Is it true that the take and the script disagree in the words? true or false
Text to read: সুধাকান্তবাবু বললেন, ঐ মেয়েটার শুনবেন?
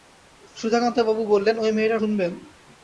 false